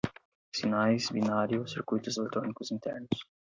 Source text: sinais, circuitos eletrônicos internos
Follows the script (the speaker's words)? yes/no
no